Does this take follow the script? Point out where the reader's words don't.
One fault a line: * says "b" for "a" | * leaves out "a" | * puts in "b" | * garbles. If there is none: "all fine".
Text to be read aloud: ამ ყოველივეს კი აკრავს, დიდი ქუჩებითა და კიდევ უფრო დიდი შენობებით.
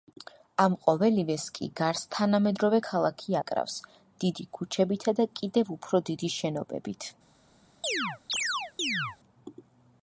* puts in "გარს თანამედროვე ქალაქი"